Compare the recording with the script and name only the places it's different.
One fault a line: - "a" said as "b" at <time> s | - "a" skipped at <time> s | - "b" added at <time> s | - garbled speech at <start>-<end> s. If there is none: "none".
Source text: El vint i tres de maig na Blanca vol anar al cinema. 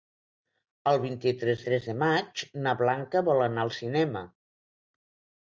- "tres" added at 1.7 s